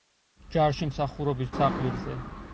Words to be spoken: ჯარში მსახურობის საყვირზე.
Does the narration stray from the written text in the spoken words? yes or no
no